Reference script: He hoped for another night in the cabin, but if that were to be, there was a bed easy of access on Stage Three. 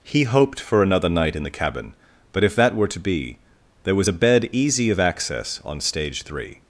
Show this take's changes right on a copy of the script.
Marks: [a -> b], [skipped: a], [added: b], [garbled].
He hoped for another night in the cabin, but if that were to be, there was a bed easy of access on Stage Three.